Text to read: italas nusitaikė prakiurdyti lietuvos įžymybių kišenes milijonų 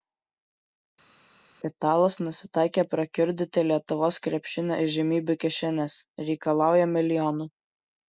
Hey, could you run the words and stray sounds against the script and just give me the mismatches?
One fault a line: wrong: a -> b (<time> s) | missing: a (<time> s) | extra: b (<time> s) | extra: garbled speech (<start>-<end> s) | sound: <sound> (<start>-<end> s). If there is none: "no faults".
extra: krepšinio (4.3 s)
extra: reikalauja (6.3 s)